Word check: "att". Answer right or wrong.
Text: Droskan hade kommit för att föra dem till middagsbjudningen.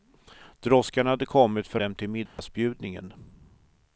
wrong